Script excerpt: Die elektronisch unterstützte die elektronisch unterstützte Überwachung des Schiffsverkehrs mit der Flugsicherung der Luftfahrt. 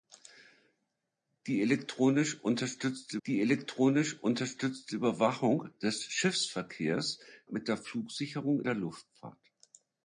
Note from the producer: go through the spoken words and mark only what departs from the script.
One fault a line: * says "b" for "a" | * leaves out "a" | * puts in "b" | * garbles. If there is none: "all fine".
all fine